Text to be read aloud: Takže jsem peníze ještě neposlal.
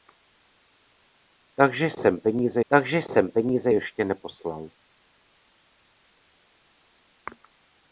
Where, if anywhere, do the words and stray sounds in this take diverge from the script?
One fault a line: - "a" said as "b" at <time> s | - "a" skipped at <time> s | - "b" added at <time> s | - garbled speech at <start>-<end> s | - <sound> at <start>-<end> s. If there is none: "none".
- "takže jsem peníze" added at 2.7 s